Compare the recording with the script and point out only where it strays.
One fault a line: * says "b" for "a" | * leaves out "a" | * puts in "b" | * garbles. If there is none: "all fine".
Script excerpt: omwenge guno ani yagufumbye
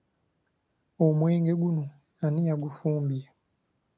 all fine